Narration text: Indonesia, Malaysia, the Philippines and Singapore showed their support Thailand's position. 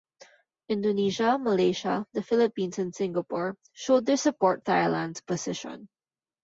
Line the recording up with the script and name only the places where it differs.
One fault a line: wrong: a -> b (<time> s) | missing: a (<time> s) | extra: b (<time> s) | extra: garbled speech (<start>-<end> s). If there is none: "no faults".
no faults